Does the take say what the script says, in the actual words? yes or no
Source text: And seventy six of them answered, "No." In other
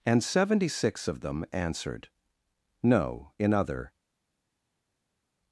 yes